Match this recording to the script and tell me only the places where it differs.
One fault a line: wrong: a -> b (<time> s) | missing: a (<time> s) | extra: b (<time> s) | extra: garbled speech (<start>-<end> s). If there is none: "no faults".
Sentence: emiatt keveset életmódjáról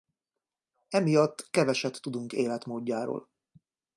extra: tudunk (2.0 s)